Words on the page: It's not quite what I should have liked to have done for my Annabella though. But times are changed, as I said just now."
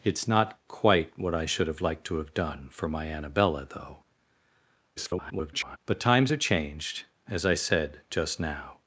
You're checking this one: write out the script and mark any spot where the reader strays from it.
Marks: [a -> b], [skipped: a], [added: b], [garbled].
It's not quite what I should have liked to have done for my Annabella though. [garbled] But times are changed, as I said just now."